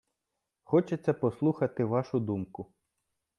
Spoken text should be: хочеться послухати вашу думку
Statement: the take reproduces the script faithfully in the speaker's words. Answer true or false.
true